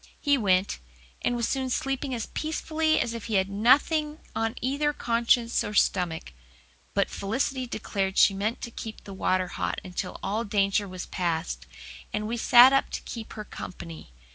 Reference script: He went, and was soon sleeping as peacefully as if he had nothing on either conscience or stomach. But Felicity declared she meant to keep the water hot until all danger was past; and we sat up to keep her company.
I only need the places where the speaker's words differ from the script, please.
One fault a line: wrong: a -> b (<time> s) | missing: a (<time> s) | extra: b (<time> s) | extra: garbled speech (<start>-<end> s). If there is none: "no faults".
no faults